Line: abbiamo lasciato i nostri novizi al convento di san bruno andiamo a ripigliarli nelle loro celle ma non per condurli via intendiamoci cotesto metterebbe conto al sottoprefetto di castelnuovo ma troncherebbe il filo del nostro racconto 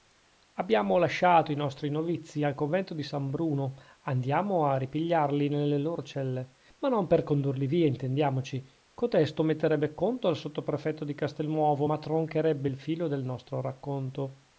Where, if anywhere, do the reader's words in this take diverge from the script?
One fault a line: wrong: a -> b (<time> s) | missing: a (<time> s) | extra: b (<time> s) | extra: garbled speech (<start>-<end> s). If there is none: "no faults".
no faults